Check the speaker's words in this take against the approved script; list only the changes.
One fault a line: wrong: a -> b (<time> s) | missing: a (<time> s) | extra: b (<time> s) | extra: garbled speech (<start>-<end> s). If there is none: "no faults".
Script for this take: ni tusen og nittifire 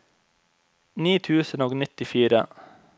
no faults